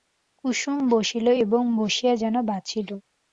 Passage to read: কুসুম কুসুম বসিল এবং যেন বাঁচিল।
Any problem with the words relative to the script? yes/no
yes